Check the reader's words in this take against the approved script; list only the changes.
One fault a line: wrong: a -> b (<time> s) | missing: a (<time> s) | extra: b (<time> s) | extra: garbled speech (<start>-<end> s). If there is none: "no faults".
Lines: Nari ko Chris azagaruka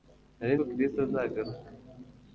no faults